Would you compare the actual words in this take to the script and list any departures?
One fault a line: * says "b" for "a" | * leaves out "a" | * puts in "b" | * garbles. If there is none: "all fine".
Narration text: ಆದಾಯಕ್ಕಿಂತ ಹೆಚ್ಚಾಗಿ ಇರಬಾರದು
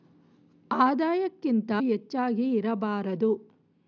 all fine